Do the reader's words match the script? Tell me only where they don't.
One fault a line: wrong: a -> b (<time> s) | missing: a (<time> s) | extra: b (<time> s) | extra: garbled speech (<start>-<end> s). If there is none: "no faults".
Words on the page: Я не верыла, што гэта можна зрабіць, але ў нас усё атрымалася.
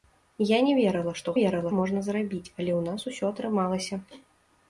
wrong: гэта -> верыла (1.4 s)